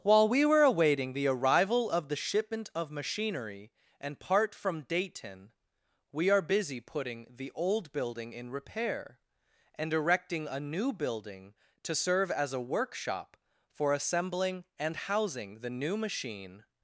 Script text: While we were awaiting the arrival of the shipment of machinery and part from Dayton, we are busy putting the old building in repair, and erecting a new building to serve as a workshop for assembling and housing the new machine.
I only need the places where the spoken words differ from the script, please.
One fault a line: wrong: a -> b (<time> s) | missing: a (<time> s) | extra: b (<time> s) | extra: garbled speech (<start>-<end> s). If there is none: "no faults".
no faults